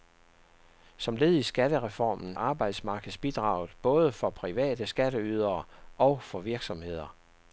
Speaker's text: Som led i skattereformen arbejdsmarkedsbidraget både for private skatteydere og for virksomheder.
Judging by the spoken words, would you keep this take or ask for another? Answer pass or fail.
pass